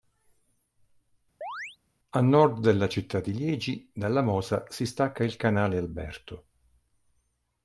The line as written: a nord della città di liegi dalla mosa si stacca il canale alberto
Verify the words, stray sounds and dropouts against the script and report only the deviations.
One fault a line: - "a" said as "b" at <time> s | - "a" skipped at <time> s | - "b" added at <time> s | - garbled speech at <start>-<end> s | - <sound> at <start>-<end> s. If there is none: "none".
- chirp at 1.4-1.8 s